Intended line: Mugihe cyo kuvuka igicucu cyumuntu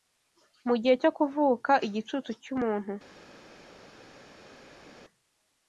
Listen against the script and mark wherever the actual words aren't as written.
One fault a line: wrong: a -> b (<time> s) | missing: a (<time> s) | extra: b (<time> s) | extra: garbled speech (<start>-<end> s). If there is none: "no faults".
no faults